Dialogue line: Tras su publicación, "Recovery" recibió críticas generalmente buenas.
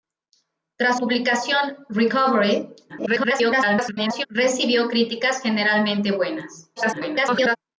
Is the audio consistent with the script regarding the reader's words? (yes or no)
no